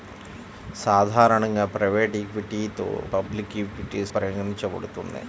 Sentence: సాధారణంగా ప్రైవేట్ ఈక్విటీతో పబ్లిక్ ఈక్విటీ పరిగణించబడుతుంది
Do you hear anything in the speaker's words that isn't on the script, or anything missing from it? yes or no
no